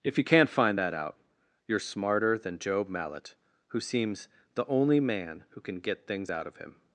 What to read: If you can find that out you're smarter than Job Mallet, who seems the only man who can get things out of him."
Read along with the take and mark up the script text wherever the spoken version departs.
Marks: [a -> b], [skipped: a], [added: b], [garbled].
If you [can -> can't] find that out you're smarter than Job Mallet, who seems the only man who can get things out of him."